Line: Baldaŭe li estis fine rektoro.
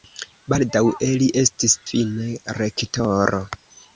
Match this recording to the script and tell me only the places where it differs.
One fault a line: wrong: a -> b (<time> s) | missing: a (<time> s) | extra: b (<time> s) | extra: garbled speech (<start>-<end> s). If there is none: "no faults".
no faults